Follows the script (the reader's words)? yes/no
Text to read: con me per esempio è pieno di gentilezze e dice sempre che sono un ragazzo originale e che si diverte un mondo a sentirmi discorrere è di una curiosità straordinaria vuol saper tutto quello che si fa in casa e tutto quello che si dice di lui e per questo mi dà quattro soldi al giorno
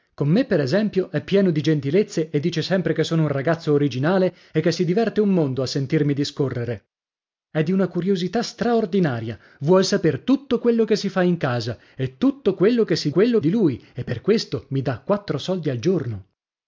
no